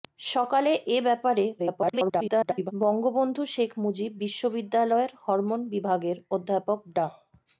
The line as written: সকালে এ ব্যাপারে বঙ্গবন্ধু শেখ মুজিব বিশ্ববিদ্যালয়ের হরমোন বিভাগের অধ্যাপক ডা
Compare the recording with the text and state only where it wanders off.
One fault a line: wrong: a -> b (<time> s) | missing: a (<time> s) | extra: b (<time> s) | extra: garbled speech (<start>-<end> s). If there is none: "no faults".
extra: garbled speech (1.6-2.7 s)